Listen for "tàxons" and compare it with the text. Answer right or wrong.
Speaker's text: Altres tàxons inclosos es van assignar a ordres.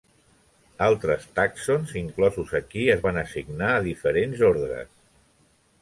right